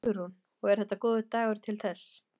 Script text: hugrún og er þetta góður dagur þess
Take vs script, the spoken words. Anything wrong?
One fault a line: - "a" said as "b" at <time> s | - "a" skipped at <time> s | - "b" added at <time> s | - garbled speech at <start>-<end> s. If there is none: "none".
- "til" added at 1.7 s